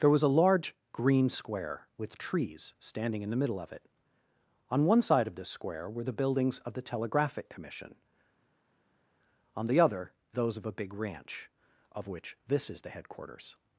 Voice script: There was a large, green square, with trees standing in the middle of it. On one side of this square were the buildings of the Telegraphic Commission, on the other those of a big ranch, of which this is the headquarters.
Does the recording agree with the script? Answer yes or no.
yes